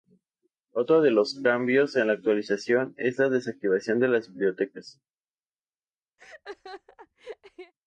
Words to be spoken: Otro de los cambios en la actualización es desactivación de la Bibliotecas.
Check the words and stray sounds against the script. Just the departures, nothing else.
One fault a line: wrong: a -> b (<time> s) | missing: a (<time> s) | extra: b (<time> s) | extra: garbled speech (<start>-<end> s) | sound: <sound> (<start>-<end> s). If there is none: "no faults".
extra: la (3.2 s)
wrong: la -> las (4.1 s)
sound: laugh (6.2-7.7 s)